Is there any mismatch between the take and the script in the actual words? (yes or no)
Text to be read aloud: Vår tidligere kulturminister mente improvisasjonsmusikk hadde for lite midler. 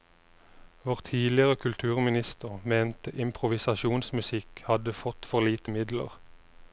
yes